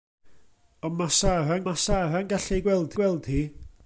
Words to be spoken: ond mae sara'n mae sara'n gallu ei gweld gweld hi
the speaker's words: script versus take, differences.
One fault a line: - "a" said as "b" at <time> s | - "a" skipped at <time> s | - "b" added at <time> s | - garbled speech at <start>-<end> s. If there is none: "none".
none